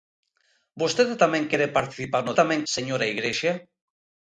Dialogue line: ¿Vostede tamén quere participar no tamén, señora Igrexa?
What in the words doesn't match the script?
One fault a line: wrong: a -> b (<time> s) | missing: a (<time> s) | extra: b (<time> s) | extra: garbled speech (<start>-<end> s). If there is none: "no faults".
no faults